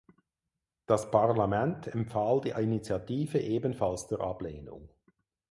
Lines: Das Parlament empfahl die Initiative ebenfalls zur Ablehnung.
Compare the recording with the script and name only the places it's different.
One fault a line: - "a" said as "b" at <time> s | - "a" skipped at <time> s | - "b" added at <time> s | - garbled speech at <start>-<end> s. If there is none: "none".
none